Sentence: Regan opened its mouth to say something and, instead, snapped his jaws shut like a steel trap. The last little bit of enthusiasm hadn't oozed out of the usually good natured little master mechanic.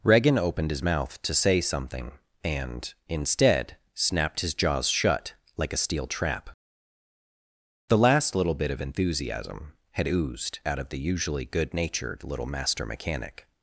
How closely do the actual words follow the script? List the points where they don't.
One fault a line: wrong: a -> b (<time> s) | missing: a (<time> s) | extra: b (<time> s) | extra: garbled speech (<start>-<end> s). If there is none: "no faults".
wrong: its -> his (0.7 s)
wrong: hadn't -> had (9.9 s)